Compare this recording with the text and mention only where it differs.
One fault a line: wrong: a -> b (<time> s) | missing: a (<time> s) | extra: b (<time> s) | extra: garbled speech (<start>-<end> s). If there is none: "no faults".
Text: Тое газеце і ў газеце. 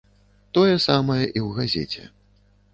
wrong: газеце -> самае (0.9 s)